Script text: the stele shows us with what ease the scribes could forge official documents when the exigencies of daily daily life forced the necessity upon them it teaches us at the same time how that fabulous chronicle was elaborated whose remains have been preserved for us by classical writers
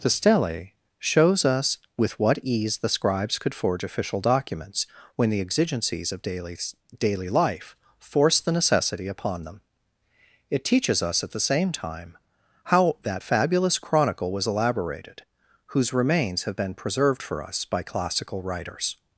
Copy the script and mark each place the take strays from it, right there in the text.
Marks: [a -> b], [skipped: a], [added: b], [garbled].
the stele shows us with what ease the scribes could forge official documents when the exigencies of daily daily life forced the necessity upon them it teaches us at the same time how that fabulous chronicle was elaborated whose remains have been preserved for us by classical writers